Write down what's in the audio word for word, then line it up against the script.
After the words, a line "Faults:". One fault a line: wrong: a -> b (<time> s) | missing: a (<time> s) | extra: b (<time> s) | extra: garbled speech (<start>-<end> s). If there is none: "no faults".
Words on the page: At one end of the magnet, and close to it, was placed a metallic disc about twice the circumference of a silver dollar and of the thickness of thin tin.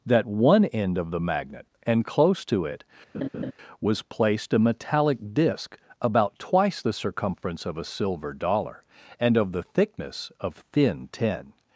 That one end of the magnet, and close to it, was placed a metallic disc about twice the circumference of a silver dollar and of the thickness of thin tin.
Faults:
wrong: At -> That (0.1 s)